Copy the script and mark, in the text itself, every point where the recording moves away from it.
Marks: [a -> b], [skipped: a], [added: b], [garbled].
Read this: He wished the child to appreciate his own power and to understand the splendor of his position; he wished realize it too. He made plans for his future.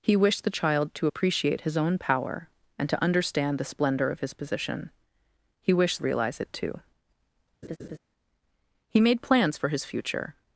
He wished the child to appreciate his own power and to understand the splendor of his position; he wished realize it too. He made plans for his future.